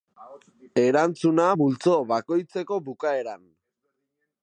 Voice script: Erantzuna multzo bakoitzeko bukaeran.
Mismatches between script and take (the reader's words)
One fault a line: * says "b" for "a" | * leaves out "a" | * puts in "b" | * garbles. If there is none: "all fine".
all fine